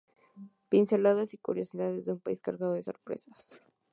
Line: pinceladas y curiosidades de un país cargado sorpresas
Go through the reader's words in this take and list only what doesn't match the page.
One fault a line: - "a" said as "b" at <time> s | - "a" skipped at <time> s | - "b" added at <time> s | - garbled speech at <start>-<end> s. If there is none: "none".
- "de" added at 2.7 s